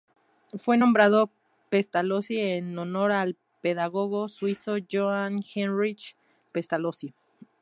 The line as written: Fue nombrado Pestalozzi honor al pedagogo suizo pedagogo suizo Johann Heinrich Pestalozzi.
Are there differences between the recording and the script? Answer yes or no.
yes